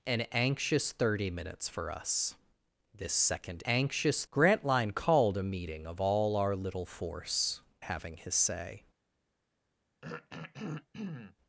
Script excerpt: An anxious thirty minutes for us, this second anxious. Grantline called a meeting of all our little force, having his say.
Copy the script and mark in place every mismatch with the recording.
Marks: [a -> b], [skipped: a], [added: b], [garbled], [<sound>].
An anxious thirty minutes for us, this second anxious. Grantline called a meeting of all our little force, having his say. [throat clearing]